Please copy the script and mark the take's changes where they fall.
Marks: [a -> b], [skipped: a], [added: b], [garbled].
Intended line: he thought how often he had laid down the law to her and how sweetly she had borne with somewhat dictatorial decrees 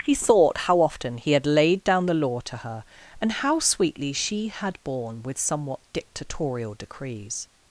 he thought how often he had laid down the law to her and how sweetly she had borne with somewhat dictatorial decrees